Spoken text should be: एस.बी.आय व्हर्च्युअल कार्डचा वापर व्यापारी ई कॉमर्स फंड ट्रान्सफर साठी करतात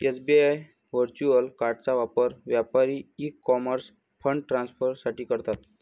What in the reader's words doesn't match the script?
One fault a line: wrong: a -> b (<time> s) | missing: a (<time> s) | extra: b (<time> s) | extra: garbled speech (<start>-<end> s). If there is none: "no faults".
no faults